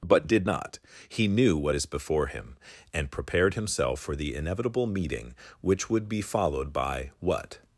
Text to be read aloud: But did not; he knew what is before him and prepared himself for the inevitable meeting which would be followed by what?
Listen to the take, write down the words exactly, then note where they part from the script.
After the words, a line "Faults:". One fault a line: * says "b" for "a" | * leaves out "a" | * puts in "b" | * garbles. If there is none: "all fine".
But did not; he knew what is before him and prepared himself for the inevitable meeting which would be followed by what?
Faults:
all fine